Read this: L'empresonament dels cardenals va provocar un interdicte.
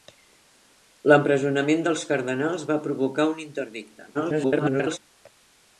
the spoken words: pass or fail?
fail